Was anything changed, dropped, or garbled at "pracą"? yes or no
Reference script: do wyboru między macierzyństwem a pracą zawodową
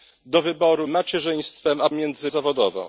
yes